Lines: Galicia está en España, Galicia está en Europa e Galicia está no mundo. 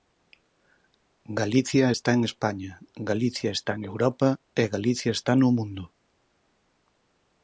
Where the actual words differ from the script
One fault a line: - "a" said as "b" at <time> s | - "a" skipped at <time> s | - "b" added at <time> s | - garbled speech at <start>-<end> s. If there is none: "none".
none